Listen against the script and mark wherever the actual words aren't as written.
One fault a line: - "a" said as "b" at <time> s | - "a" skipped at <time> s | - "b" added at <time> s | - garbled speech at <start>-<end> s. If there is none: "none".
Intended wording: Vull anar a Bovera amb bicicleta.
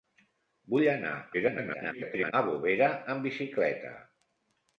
- garbled speech at 1.3-2.3 s